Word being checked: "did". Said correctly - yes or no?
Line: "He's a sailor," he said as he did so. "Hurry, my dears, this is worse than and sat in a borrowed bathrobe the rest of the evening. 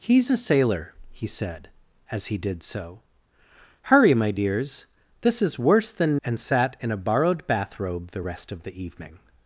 yes